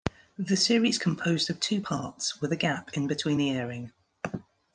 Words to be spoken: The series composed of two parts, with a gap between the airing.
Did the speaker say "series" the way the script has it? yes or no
yes